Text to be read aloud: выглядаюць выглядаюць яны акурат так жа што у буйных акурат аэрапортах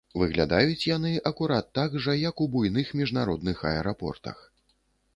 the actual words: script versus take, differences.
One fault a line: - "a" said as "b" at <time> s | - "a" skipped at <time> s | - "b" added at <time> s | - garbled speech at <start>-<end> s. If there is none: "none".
- "выглядаюць" skipped at 0.9 s
- "што" said as "як" at 2.3 s
- "акурат" said as "міжнародных" at 3.0 s